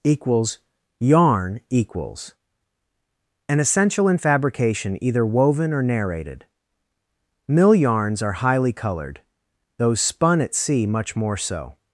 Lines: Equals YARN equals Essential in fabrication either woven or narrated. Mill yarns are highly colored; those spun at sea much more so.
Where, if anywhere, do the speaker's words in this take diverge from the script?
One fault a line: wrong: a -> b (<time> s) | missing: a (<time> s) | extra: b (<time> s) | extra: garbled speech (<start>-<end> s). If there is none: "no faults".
extra: An (3.5 s)